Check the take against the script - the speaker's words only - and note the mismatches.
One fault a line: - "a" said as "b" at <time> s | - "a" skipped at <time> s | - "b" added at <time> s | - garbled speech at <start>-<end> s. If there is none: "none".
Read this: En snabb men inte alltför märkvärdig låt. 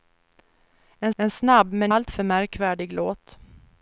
- "en" added at 1.2 s
- "inte" skipped at 1.9 s